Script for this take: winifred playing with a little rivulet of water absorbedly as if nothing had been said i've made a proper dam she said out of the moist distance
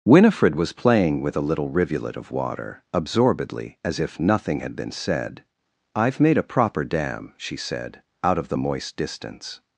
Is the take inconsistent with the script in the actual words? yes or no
yes